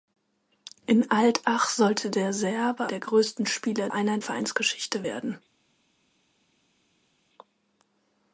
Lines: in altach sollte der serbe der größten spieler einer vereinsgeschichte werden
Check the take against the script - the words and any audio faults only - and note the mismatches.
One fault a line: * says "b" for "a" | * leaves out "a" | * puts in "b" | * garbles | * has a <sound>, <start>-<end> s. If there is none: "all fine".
all fine